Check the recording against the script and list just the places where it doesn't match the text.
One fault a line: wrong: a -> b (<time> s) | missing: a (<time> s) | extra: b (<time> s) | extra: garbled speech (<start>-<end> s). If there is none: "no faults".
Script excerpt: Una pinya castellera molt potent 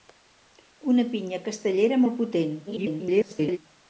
extra: garbled speech (2.7-3.6 s)